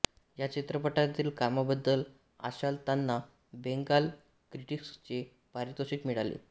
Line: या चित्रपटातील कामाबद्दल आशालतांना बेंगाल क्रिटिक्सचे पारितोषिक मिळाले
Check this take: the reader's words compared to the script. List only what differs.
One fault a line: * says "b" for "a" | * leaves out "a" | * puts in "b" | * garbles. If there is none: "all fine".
all fine